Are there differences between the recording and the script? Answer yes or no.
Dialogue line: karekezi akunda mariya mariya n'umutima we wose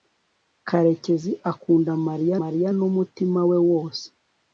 no